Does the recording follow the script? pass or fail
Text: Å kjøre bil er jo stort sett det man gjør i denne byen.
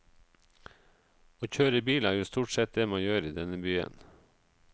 pass